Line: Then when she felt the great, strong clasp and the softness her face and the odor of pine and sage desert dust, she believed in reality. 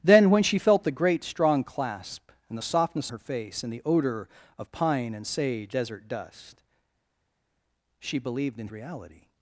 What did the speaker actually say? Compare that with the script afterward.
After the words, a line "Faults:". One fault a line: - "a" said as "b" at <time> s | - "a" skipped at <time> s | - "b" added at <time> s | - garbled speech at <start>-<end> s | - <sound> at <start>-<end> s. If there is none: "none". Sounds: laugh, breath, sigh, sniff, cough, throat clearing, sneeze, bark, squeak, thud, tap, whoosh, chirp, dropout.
Then when she felt the great, strong clasp and the softness her face and the odor of pine and sage desert dust, she believed in reality.
Faults:
none